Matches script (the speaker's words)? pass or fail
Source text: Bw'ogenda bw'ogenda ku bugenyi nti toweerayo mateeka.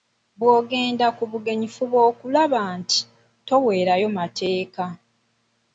fail